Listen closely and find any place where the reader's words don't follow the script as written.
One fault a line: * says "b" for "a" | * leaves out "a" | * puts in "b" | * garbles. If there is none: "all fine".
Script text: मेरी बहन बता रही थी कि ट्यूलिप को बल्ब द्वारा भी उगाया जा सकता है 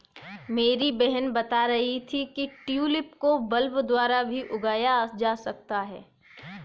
all fine